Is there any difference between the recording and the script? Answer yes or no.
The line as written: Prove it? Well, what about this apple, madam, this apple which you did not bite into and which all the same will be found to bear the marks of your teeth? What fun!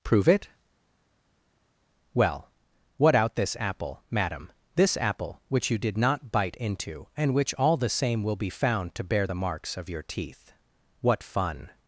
yes